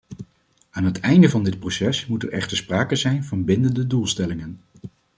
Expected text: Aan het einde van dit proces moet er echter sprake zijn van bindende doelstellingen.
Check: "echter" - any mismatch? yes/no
no